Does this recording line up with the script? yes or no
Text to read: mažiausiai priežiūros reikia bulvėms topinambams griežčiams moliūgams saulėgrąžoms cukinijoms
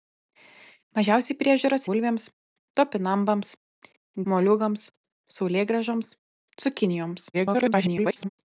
no